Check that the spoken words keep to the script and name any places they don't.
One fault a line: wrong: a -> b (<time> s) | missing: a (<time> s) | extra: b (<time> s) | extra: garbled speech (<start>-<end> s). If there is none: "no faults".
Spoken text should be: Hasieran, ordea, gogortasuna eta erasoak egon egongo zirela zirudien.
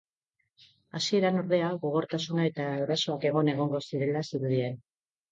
no faults